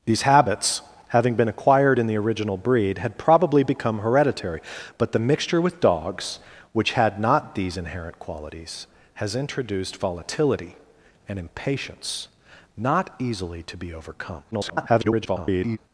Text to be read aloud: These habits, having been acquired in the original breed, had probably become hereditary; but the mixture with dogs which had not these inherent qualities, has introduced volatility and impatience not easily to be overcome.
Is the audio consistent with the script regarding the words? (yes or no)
no